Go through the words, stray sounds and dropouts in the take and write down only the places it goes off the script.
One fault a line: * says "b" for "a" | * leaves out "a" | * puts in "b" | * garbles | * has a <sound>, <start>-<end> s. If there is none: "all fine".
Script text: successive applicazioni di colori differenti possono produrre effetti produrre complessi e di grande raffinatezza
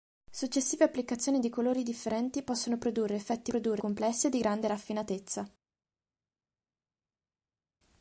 all fine